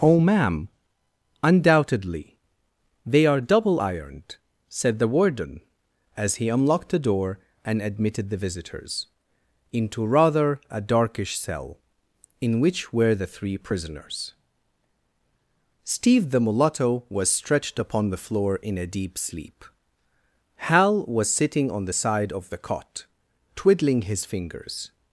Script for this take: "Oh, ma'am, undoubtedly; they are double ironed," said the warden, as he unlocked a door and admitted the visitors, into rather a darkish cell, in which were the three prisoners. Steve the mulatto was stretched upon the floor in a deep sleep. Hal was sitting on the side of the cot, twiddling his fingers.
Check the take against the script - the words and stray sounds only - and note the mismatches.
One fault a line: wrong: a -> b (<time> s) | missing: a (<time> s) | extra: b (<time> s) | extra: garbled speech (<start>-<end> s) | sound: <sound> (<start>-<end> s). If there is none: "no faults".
wrong: a -> the (6.9 s)